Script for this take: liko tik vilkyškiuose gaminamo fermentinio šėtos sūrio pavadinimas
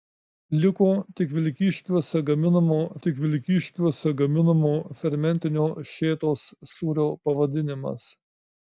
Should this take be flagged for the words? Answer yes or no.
yes